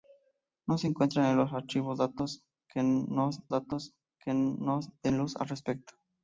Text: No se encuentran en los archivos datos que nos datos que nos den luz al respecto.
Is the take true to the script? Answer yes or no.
yes